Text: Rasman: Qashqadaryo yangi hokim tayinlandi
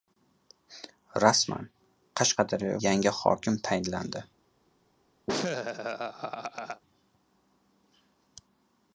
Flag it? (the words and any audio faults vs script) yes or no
yes